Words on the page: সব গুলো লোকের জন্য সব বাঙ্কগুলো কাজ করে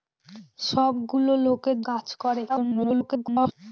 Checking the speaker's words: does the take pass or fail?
fail